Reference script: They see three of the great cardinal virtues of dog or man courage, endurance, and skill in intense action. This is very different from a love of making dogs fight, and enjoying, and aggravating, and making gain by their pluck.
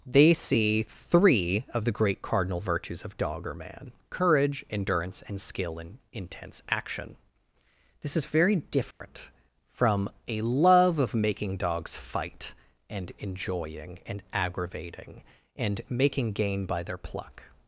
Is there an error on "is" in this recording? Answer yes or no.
no